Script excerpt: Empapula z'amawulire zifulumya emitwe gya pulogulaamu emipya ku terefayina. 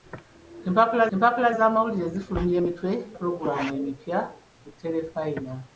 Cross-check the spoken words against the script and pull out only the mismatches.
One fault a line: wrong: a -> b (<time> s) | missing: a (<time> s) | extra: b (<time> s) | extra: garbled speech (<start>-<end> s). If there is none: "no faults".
extra: empapula (1.1 s)
missing: gya (2.9 s)